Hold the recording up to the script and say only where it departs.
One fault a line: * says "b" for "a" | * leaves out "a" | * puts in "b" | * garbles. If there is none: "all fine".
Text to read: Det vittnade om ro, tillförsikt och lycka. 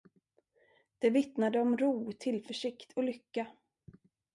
all fine